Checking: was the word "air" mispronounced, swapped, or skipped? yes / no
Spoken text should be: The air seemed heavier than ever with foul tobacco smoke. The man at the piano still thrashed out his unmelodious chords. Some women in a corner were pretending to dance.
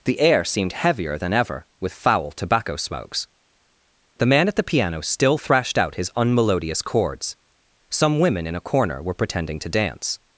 no